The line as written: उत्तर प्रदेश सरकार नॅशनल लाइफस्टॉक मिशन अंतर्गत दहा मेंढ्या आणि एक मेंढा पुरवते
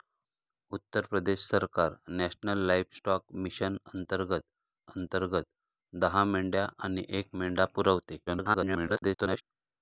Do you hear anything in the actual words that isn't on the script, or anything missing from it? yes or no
yes